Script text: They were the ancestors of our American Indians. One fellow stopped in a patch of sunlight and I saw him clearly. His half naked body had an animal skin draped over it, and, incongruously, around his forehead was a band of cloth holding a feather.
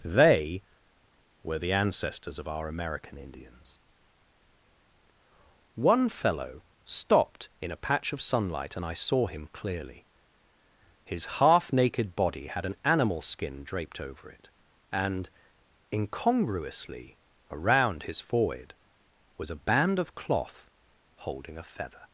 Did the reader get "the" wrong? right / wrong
right